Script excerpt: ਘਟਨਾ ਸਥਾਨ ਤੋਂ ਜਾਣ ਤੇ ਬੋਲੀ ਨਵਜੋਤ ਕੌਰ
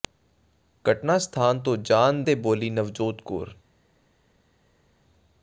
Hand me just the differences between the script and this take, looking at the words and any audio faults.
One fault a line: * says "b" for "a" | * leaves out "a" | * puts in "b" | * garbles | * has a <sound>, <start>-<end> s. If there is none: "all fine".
all fine